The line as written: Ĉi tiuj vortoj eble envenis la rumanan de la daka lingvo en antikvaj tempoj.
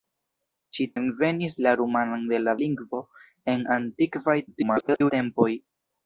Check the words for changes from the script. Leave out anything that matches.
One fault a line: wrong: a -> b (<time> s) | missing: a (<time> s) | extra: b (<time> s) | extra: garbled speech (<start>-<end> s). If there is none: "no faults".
missing: tiuj vortoj eble (0.8 s)
missing: daka (2.6 s)
extra: garbled speech (4.5-5.1 s)